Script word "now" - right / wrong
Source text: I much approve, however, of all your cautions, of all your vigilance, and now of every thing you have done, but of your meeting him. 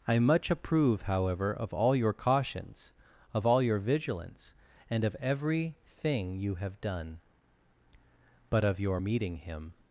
wrong